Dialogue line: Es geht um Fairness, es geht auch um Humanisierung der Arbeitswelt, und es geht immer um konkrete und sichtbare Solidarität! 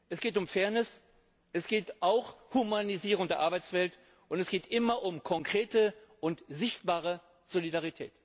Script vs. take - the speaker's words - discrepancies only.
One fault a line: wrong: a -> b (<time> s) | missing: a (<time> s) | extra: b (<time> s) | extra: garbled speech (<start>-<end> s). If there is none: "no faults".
no faults